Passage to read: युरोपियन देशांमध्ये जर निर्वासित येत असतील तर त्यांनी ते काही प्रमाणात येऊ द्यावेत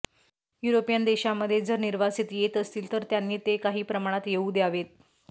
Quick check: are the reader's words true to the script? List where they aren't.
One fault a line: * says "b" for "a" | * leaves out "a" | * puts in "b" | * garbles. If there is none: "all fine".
all fine